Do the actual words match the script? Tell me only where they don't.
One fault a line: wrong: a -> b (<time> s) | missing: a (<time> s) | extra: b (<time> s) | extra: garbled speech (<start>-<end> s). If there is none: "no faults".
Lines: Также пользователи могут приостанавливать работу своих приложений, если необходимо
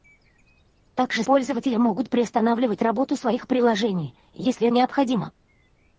no faults